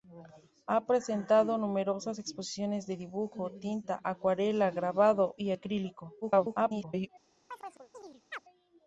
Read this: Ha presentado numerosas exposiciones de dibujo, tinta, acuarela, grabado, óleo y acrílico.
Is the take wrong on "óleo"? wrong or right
wrong